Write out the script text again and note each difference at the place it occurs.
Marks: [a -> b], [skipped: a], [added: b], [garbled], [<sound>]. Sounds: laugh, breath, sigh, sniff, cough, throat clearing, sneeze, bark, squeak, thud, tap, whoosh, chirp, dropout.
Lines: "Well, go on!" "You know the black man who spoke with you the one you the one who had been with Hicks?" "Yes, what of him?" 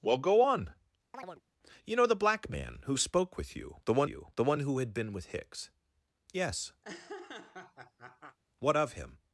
"Well, go on!" [chirp] "You know the black man who spoke with you the one you the one who had been with Hicks?" "Yes, [laugh] what of him?"